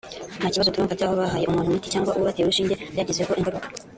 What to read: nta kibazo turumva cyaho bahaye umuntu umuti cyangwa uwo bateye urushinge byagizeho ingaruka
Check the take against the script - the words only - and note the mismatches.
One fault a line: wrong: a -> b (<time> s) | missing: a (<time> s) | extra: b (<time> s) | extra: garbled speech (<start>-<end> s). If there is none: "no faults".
no faults